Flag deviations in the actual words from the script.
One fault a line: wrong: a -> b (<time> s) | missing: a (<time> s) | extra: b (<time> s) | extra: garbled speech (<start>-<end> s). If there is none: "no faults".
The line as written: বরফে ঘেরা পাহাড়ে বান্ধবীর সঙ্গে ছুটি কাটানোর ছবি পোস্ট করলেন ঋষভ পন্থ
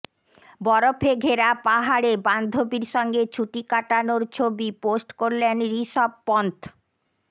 no faults